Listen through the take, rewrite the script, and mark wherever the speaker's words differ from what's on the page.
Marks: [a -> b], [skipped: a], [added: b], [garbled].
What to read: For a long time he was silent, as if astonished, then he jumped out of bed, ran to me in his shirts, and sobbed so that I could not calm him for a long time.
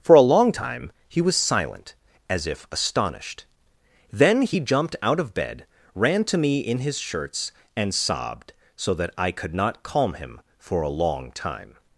For a long time he was silent, as if astonished, then he jumped out of bed, ran to me in his shirts, and sobbed so that I could not calm him for a long time.